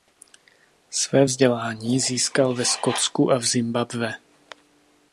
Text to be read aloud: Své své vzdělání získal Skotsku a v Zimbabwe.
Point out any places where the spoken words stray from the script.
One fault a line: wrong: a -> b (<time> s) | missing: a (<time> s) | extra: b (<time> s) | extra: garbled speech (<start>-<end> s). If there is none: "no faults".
missing: své (1.2 s)
extra: ve (2.5 s)